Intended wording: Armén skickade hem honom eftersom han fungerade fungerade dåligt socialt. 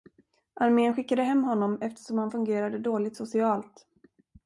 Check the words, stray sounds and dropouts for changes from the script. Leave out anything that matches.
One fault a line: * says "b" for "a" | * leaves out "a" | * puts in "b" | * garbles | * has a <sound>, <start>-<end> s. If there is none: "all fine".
* leaves out "fungerade"